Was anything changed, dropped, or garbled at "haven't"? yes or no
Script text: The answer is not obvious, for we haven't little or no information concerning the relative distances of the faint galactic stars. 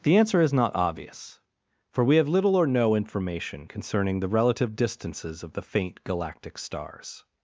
yes